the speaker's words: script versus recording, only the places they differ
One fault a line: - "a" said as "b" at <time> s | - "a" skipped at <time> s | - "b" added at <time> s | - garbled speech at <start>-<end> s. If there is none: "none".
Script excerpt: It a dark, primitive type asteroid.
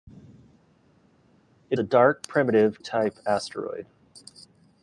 none